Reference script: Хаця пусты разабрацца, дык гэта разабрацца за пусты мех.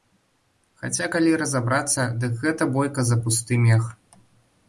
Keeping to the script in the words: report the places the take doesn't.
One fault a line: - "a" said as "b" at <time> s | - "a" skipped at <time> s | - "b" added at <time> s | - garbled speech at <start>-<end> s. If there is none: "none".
- "пусты" said as "калі" at 1.2 s
- "разабрацца" said as "бойка" at 2.8 s